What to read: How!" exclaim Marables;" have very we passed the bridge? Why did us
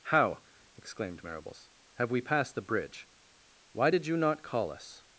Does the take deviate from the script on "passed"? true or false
false